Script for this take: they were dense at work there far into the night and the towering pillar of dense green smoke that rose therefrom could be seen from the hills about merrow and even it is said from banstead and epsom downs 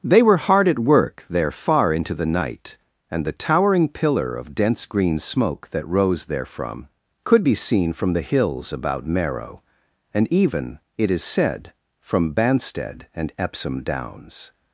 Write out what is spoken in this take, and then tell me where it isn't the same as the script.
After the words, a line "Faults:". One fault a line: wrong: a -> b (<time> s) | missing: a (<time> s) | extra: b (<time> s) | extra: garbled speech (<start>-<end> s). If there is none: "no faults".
they were hard at work there far into the night and the towering pillar of dense green smoke that rose therefrom could be seen from the hills about merrow and even it is said from banstead and epsom downs
Faults:
wrong: dense -> hard (0.4 s)